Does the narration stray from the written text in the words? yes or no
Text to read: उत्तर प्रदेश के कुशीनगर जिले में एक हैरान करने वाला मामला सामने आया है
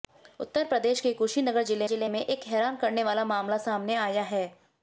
yes